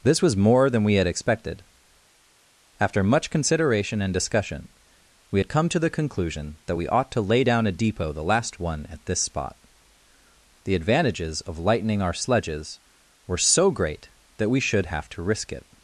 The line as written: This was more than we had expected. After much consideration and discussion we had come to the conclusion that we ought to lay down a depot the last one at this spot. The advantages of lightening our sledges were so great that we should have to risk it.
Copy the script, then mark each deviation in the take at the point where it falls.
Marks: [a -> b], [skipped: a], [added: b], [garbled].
This was more than we had expected. After much consideration and discussion we had come to the conclusion that we ought to lay down a depot the last one at this spot. The advantages of lightening our sledges were so great that we should have to risk it.